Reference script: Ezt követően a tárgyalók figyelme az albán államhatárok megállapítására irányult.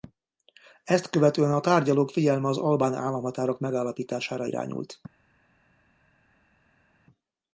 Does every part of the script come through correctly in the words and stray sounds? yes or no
yes